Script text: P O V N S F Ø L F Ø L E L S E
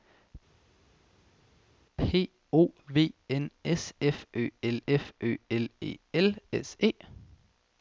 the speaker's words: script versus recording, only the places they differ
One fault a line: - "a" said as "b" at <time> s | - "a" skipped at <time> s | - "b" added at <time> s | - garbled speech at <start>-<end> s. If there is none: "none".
none